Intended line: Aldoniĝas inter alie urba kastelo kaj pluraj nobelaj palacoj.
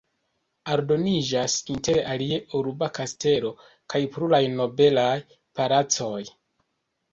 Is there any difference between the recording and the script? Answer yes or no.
no